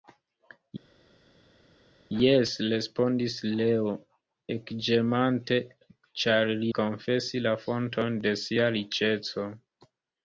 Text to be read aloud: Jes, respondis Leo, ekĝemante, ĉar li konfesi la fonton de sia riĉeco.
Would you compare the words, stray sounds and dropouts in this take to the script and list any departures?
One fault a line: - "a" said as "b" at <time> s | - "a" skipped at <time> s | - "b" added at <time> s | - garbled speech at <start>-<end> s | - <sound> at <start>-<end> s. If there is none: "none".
none